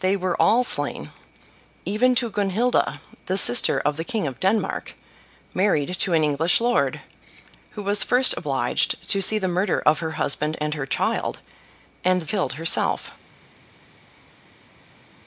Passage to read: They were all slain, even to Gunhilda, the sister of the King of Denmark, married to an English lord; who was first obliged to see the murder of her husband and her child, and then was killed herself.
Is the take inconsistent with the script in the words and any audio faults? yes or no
yes